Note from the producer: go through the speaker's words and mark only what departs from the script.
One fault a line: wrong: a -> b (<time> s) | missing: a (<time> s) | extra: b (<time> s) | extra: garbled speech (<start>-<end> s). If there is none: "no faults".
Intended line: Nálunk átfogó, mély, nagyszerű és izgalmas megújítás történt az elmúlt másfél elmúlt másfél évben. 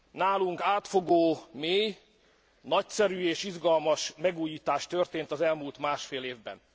missing: elmúlt másfél (6.2 s)